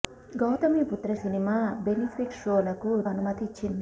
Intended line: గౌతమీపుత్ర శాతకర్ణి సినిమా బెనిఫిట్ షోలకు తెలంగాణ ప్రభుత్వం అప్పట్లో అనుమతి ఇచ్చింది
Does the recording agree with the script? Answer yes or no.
no